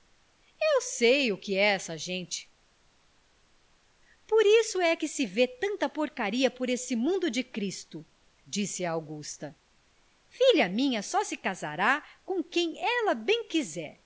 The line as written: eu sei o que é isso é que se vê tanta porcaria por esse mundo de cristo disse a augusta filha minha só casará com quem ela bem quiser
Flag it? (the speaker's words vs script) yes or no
yes